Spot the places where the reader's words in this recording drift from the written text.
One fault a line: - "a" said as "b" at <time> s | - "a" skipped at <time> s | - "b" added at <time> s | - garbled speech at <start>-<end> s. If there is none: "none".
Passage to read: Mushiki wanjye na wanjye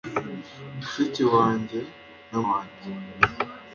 none